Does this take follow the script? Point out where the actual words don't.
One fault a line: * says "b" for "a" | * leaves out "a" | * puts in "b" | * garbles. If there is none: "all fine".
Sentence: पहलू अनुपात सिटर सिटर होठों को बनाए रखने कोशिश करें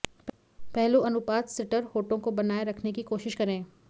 * leaves out "सिटर"
* puts in "की"